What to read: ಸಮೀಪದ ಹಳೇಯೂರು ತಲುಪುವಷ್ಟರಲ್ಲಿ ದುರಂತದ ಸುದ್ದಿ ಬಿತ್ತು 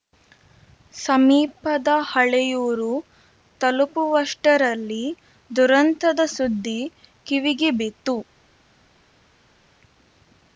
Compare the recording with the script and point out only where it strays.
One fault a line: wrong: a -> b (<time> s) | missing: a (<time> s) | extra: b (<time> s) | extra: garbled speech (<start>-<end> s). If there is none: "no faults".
extra: ಕಿವಿಗೆ (7.3 s)